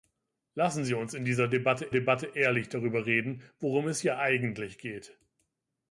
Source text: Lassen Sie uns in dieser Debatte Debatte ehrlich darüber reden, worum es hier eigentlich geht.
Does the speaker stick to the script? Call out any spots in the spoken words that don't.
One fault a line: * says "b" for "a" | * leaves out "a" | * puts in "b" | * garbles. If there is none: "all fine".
all fine